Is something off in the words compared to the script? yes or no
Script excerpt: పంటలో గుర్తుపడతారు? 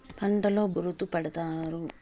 no